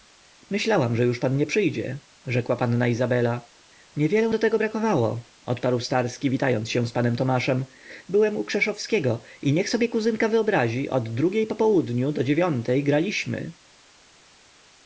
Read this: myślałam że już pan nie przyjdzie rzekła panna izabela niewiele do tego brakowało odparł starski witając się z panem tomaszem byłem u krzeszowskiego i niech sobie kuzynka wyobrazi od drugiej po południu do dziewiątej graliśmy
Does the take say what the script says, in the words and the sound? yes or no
yes